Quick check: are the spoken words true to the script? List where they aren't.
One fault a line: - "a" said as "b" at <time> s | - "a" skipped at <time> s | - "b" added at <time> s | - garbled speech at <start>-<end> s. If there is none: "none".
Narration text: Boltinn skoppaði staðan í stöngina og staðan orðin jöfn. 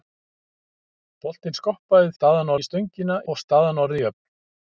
none